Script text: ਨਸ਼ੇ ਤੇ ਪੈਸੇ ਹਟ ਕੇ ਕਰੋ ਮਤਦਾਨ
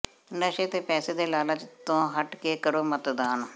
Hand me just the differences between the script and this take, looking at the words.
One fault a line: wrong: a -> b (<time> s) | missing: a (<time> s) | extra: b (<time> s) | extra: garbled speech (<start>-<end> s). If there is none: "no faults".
extra: ਦੇ ਲਾਲਚ ਤੋਂ (1.1 s)